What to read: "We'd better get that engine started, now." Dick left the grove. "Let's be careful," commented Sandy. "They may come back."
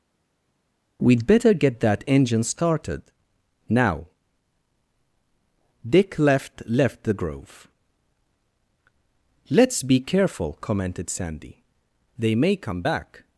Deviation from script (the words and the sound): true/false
true